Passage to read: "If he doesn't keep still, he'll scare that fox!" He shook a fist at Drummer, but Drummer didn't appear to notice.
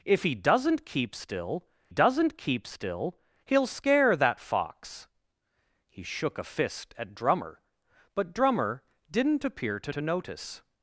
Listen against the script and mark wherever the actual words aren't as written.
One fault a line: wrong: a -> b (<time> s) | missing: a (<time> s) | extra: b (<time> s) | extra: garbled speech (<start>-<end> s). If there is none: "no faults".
extra: doesn't keep still (1.9 s)
extra: to (9.9 s)